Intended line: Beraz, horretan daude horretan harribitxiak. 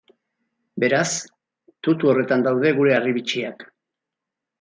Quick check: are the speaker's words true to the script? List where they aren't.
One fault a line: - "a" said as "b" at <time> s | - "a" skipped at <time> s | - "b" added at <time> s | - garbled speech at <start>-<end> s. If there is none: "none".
- "tutu" added at 1.9 s
- "horretan" said as "gure" at 2.8 s